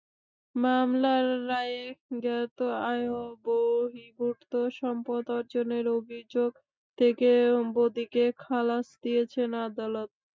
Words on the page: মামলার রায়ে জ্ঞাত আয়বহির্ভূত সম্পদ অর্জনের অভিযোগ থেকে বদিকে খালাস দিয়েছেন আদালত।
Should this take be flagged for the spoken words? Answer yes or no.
no